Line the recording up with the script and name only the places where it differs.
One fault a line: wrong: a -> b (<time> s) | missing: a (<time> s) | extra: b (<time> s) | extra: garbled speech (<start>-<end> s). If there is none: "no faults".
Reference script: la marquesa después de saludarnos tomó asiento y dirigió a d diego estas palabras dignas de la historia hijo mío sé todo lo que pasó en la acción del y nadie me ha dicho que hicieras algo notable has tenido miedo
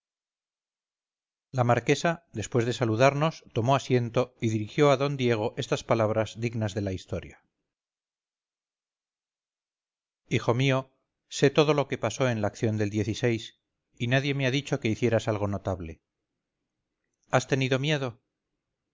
no faults